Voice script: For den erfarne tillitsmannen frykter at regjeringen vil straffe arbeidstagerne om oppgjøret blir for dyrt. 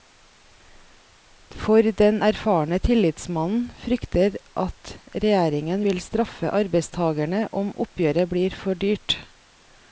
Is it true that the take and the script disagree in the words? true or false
false